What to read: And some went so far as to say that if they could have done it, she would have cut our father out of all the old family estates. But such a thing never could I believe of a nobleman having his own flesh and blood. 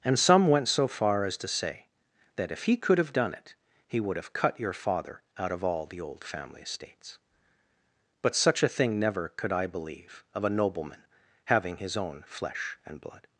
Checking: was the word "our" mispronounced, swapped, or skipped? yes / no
yes